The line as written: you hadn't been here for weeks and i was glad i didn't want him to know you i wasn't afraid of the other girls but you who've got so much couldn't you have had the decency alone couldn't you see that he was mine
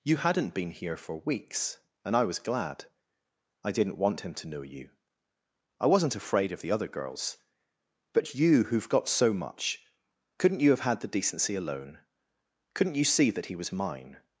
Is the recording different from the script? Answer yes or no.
no